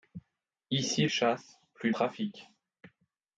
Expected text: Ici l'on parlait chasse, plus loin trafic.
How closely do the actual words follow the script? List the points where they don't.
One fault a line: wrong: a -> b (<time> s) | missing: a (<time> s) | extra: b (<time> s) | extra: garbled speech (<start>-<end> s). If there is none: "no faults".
missing: l'on parlait (1.1 s)
missing: loin (1.9 s)